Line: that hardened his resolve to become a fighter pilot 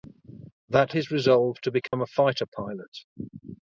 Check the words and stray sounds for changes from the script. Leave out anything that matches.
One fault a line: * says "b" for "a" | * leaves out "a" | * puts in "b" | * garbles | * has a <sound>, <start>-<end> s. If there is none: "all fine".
* leaves out "hardened"
* has a dropout, 1.9-1.9 s